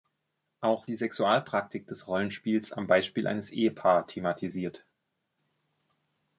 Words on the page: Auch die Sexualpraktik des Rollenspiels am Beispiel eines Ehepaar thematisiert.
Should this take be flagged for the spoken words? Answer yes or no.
no